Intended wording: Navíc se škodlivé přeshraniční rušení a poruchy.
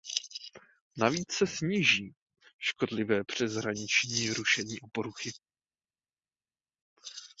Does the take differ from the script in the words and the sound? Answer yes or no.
yes